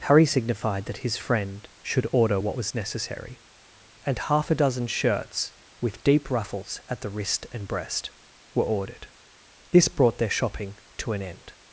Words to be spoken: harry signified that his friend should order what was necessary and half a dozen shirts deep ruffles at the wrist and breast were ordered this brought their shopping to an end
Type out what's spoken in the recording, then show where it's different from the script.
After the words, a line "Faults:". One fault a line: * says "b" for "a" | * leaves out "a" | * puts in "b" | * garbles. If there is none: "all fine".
harry signified that his friend should order what was necessary and half a dozen shirts with deep ruffles at the wrist and breast were ordered this brought their shopping to an end
Faults:
* puts in "with"